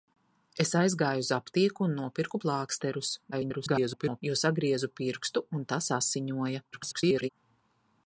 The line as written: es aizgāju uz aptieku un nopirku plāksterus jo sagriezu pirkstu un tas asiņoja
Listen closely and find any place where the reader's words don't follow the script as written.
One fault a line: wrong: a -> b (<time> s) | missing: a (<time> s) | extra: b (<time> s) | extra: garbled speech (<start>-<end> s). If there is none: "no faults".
extra: garbled speech (3.3-4.2 s)
extra: garbled speech (6.7-7.3 s)